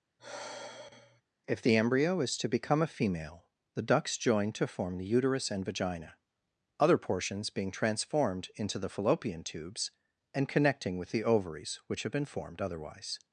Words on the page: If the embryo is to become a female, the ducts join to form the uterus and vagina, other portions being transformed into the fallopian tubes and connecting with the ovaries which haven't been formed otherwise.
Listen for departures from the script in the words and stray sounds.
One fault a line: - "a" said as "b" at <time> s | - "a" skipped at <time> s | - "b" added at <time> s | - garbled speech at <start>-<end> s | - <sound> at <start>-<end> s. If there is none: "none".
- sigh at 0.2-1.2 s
- "haven't" said as "have" at 12.0 s